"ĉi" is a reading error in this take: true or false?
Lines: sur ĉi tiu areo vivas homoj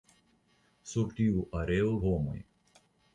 true